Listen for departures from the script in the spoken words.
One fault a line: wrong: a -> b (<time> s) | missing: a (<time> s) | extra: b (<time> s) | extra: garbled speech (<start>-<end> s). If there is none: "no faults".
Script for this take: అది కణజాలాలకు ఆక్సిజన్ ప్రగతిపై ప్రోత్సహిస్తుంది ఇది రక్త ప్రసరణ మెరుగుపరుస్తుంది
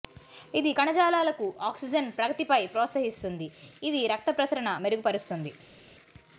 wrong: అది -> ఇది (0.6 s)